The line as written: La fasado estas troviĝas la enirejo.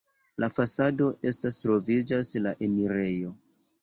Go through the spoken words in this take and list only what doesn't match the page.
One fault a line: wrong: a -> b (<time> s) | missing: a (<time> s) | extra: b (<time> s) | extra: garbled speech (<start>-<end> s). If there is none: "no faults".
no faults